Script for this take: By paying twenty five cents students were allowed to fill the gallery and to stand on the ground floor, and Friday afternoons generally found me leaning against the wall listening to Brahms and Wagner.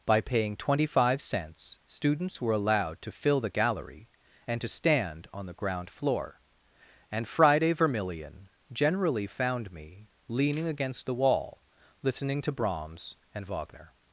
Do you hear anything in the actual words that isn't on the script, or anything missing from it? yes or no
yes